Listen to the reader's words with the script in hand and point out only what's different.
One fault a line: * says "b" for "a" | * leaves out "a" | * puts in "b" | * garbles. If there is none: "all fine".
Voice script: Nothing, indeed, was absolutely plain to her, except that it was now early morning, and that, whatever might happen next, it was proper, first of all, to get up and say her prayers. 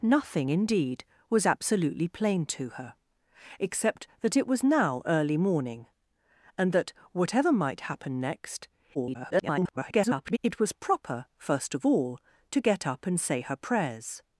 * garbles